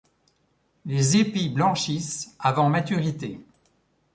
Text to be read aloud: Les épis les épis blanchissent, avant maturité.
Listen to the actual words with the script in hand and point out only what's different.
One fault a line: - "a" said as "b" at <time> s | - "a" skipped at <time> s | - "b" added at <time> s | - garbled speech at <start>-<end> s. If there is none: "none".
- "les épis" skipped at 1.5 s